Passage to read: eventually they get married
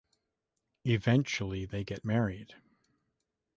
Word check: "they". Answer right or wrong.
right